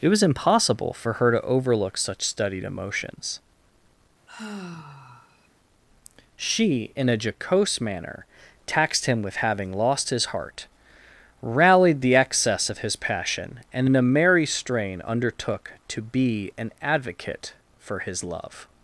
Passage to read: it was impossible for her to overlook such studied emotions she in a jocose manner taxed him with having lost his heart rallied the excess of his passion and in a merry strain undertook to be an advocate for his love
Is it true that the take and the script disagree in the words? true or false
false